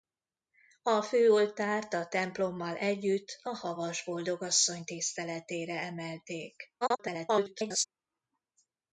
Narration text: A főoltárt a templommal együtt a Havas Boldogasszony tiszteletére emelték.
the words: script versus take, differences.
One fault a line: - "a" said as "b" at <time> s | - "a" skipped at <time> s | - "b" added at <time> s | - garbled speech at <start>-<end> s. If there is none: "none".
- garbled speech at 6.8-7.8 s